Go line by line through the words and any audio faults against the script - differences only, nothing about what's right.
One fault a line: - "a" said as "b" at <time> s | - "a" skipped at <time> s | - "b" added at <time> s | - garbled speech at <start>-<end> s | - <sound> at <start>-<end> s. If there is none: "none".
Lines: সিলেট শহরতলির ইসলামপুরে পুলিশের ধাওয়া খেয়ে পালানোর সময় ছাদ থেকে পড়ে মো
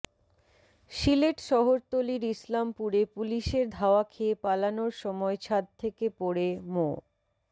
none